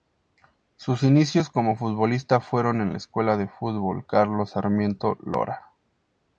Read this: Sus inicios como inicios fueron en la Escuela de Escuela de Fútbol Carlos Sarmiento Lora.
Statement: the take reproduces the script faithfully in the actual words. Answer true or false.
false